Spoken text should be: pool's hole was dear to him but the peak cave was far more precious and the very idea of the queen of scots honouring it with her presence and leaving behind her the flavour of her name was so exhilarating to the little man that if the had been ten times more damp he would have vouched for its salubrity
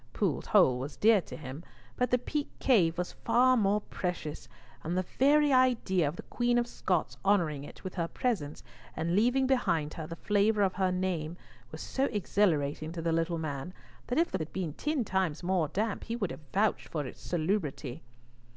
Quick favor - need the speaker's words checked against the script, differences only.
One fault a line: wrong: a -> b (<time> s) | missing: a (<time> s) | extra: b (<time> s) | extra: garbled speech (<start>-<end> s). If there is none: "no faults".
no faults